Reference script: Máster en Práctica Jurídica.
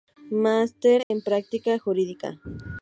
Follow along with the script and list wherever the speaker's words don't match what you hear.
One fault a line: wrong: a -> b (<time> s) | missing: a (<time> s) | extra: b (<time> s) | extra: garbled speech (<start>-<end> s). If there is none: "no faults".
no faults